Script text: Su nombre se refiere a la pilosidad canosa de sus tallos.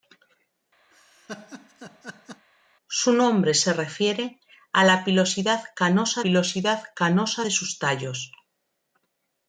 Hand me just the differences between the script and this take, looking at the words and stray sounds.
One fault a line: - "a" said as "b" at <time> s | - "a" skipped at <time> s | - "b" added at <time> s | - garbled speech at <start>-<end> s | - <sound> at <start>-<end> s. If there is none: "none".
- laugh at 0.9-2.5 s
- "pilosidad canosa" added at 6.2 s